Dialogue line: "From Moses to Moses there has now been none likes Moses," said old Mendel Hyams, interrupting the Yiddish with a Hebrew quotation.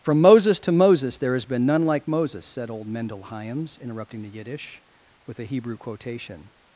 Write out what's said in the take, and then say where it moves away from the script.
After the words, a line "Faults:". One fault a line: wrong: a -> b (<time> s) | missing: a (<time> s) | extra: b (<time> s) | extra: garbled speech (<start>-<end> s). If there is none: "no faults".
"From Moses to Moses there has been none like Moses," said old Mendel Hyams, interrupting the Yiddish with a Hebrew quotation.
Faults:
missing: now (1.4 s)
wrong: likes -> like (1.9 s)